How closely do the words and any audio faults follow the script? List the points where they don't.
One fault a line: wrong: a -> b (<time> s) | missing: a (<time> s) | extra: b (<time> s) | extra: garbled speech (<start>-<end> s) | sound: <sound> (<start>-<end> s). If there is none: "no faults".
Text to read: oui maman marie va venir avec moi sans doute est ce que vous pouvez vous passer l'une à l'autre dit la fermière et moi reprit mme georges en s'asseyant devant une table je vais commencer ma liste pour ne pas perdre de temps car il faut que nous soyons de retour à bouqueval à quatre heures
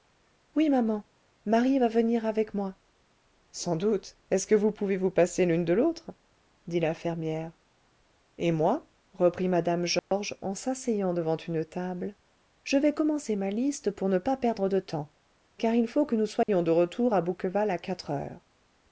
wrong: à -> de (5.6 s)
sound: dropout (10.0-10.1 s)
sound: dropout (16.4-16.5 s)